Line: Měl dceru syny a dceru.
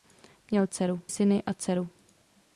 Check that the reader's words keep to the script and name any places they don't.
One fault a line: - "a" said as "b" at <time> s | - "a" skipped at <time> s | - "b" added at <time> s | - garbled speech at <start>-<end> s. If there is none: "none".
none